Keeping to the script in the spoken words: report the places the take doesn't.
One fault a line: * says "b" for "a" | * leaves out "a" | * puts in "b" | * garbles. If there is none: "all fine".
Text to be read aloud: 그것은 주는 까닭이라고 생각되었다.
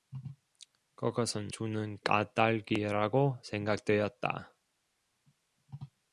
all fine